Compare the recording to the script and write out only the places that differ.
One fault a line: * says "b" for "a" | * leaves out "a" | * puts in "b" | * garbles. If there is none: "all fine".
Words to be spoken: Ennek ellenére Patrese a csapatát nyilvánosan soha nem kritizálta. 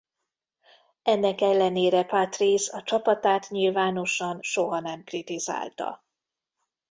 all fine